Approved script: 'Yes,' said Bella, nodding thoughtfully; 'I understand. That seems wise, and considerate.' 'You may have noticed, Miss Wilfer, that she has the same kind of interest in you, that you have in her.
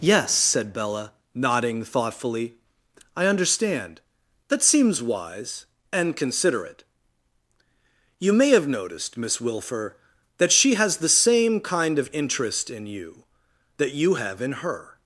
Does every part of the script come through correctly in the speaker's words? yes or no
yes